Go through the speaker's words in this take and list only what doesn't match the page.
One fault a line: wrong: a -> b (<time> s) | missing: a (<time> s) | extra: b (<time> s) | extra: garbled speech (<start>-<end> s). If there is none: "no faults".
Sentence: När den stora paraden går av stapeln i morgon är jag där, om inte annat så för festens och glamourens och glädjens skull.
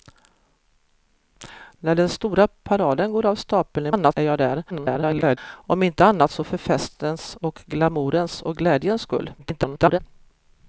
wrong: morgon -> annat (3.9 s)
extra: garbled speech (4.7-5.4 s)
extra: garbled speech (9.4-10.0 s)